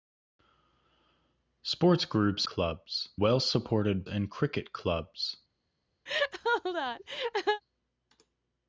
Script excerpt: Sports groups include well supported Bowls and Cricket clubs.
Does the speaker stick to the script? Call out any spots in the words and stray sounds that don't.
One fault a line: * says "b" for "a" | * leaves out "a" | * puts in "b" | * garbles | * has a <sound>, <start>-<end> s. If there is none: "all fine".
* says "clubs" for "include"
* leaves out "Bowls"
* has a laugh, 6.1-7.6 s